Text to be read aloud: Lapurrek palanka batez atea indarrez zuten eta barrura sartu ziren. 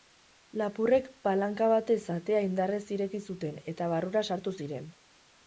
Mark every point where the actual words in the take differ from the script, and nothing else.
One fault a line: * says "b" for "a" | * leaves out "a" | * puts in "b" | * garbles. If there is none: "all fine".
* puts in "ireki"